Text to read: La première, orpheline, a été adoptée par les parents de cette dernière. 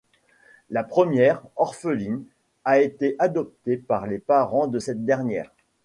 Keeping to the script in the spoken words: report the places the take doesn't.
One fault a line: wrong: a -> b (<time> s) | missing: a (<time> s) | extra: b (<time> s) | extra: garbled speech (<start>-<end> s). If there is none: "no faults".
no faults